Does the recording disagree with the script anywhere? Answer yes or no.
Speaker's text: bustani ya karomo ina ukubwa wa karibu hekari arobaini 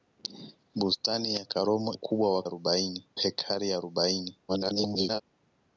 yes